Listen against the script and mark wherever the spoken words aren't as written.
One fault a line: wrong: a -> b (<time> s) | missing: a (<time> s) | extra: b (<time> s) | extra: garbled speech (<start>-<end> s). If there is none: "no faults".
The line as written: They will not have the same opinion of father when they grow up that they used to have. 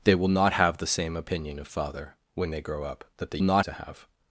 wrong: used -> not (3.4 s)